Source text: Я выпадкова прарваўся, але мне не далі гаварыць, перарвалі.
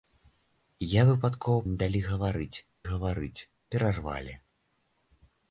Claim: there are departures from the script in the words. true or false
true